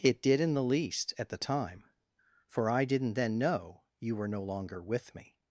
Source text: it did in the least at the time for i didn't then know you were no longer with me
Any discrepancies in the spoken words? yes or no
no